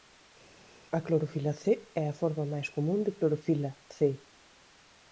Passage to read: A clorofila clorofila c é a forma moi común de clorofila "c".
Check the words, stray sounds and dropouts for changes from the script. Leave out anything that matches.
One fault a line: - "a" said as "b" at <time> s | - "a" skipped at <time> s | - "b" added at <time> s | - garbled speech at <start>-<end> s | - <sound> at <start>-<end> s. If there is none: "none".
- "clorofila" skipped at 1.5 s
- "moi" said as "máis" at 2.5 s